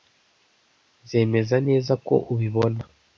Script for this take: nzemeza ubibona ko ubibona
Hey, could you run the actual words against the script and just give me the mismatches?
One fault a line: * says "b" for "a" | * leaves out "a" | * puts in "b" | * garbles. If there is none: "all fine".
* says "neza" for "ubibona"